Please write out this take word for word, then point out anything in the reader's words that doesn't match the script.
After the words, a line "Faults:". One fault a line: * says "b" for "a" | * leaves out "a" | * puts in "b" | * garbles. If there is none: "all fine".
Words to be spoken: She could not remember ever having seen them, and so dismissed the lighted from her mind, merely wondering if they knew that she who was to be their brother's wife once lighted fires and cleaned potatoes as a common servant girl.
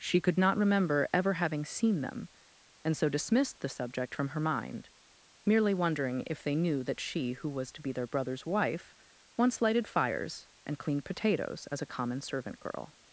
She could not remember ever having seen them, and so dismissed the subject from her mind, merely wondering if they knew that she who was to be their brother's wife once lighted fires and cleaned potatoes as a common servant girl.
Faults:
* says "subject" for "lighted"